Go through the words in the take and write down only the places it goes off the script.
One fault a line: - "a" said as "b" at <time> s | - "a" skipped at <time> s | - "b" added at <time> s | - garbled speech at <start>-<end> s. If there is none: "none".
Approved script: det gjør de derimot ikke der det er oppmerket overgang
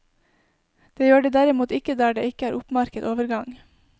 - "ikke" added at 2.3 s